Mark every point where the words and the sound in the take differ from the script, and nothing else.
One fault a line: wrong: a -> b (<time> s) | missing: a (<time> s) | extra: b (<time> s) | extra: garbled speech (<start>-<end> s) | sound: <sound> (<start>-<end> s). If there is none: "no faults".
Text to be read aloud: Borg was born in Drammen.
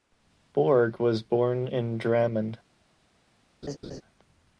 sound: laugh (3.6-4.0 s)